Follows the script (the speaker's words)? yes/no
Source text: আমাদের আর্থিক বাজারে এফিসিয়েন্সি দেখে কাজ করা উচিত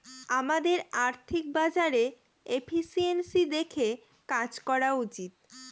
yes